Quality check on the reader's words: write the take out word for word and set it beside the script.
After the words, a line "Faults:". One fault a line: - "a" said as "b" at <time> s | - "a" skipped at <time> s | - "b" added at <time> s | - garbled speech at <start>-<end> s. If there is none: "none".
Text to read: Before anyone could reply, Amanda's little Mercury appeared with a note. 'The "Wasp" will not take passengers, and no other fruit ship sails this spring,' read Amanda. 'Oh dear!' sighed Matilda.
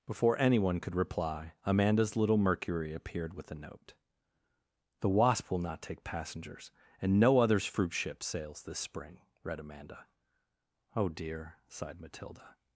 Before anyone could reply, Amanda's little Mercury appeared with a note. 'The "Wasp" will not take passengers, and no others fruit ship sails this spring,' read Amanda. 'Oh dear!' sighed Matilda.
Faults:
- "other" said as "others" at 7.4 s